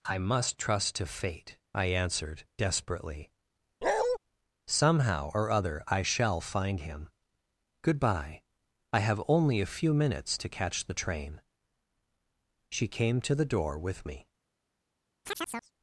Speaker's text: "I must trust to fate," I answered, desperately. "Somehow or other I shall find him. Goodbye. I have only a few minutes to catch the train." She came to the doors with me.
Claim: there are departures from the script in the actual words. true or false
true